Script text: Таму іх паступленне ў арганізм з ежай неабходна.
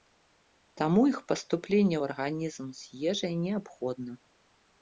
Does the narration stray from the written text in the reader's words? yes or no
no